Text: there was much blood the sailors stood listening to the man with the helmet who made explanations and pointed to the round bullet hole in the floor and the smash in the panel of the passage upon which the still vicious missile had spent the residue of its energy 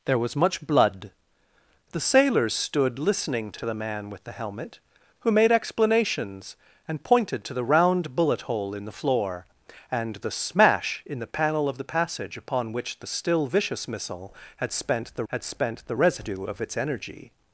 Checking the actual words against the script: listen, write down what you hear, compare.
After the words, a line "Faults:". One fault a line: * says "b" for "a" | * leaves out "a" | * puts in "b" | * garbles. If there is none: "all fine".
there was much blood the sailors stood listening to to the man with the helmet who made explanations and pointed to the round bullet hole in the floor and the smash in the panel of the passage upon which the still vicious missile had spent the had spent the residue of its energy
Faults:
* puts in "to"
* puts in "had spent the"